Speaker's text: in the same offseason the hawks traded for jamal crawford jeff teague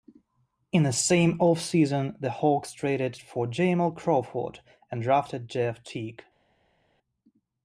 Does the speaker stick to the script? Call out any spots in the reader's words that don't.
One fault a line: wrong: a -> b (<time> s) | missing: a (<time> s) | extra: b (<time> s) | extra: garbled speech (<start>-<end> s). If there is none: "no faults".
extra: and drafted (4.9 s)